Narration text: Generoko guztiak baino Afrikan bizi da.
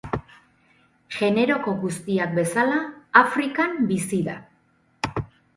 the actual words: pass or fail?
fail